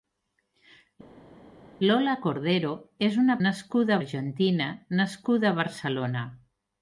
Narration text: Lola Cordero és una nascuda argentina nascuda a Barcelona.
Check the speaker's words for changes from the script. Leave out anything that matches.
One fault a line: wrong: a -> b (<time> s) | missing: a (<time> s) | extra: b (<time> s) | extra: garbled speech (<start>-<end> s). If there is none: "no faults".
no faults